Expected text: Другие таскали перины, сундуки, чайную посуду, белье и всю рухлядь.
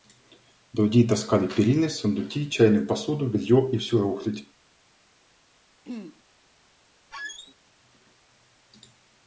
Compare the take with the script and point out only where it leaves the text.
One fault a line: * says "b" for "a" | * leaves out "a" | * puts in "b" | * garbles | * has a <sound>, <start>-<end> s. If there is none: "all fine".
* has a throat clearing, 5.8-6.2 s
* has a squeak, 7.1-7.5 s